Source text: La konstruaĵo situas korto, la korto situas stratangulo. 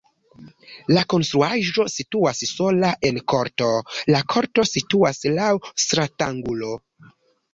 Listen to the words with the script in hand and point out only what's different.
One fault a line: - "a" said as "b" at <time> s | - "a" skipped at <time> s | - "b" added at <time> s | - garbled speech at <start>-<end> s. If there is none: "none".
- "sola en" added at 2.5 s
- "laŭ" added at 5.4 s